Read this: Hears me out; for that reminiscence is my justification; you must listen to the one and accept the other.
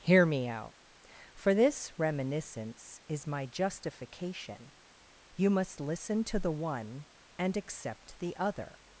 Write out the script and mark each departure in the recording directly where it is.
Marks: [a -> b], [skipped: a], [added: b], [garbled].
[Hears -> Hear] me out; for [that -> this] reminiscence is my justification; you must listen to the one and accept the other.